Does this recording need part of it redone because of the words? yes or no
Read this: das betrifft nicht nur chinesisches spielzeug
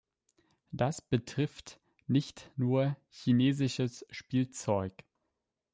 no